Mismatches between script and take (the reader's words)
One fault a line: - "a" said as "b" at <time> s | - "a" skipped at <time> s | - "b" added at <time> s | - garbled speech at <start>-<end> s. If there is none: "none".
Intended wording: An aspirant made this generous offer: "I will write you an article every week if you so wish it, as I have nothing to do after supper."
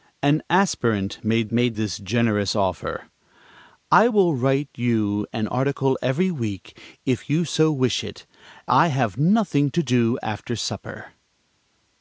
- "made" added at 1.5 s
- "as" skipped at 8.2 s